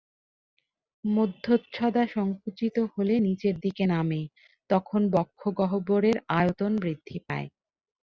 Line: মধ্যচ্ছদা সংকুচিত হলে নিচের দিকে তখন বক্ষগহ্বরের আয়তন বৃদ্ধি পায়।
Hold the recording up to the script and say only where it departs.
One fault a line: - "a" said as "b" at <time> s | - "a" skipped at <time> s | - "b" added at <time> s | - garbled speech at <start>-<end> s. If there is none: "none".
- "নামে" added at 3.8 s